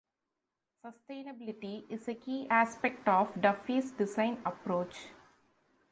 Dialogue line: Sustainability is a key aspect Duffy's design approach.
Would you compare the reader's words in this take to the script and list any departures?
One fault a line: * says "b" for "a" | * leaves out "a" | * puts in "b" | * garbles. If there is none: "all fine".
* puts in "of"